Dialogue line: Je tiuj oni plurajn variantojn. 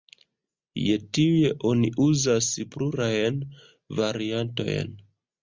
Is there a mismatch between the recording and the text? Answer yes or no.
yes